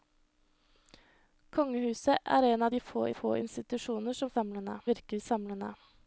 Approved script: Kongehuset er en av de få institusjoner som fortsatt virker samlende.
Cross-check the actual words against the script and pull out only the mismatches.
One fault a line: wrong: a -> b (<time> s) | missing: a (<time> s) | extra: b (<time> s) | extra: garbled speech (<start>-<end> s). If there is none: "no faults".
extra: få (3.2 s)
wrong: fortsatt -> samlende (4.4 s)